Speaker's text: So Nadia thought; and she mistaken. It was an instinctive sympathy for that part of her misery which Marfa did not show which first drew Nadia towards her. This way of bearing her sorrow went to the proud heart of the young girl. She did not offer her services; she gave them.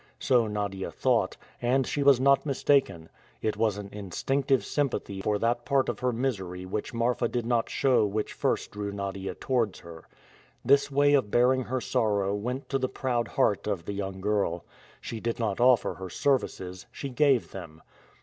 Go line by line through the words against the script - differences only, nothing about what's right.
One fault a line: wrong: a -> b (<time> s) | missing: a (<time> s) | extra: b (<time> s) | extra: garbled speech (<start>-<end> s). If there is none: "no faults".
extra: was not (2.0 s)